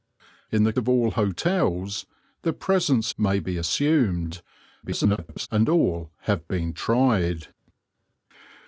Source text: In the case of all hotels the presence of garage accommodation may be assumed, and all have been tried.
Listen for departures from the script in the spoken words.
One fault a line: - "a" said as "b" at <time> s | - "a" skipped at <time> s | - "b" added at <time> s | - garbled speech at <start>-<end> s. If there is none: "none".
- "case" skipped at 0.7 s
- "of garage accommodation" skipped at 3.1 s
- garbled speech at 4.8-5.5 s